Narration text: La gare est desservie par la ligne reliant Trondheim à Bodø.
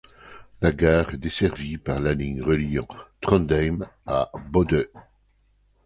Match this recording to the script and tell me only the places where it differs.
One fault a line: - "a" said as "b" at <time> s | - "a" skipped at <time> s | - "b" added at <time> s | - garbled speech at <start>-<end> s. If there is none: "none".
none